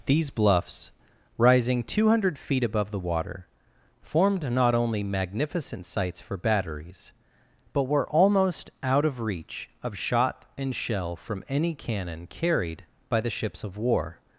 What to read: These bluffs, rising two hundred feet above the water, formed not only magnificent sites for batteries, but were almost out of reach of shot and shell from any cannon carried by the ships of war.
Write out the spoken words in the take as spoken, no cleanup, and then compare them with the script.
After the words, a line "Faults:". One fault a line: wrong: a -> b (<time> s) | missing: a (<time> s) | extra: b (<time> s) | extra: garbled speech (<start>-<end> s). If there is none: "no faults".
These bluffs, rising two hundred feet above the water, formed not only magnificent sites for batteries, but were almost out of reach of shot and shell from any cannon carried by the ships of war.
Faults:
no faults